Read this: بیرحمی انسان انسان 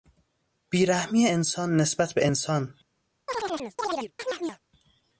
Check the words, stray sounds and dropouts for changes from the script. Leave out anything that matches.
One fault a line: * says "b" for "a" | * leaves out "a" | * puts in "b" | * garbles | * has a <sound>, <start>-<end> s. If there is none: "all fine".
* puts in "نسبت به"
* has a chirp, 3.3-4.6 s